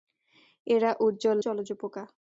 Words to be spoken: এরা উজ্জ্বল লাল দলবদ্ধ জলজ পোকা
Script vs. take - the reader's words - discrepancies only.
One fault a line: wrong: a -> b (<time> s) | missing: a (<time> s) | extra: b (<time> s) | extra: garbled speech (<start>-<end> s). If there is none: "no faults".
missing: লাল দলবদ্ধ (1.4 s)